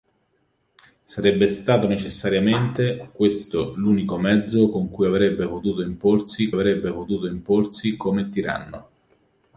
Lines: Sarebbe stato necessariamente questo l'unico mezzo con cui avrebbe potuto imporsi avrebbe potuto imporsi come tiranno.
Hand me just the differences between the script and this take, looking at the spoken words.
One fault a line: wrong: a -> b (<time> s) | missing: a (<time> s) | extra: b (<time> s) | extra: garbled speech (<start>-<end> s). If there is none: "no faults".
no faults